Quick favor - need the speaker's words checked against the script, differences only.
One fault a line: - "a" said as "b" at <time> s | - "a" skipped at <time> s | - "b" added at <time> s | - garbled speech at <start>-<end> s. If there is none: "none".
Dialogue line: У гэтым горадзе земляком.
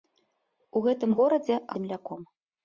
none